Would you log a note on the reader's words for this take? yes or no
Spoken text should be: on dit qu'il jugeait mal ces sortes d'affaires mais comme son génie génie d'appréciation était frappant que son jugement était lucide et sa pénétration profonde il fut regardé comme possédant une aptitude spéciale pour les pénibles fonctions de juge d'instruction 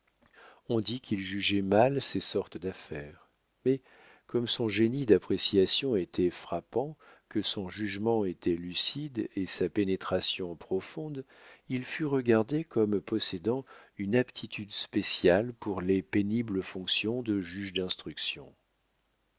yes